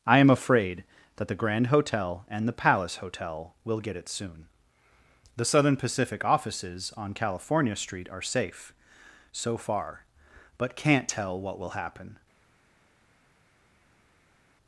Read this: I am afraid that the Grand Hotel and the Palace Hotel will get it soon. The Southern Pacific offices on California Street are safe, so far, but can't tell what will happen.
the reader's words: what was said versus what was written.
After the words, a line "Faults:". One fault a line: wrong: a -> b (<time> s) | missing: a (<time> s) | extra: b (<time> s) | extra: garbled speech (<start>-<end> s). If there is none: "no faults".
I am afraid that the Grand Hotel and the Palace Hotel will get it soon. The Southern Pacific offices on California Street are safe, so far, but can't tell what will happen.
Faults:
no faults